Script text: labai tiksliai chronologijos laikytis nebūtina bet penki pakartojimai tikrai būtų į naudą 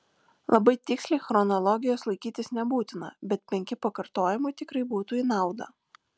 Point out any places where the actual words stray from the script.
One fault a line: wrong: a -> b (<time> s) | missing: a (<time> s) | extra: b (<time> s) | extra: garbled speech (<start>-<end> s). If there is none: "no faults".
no faults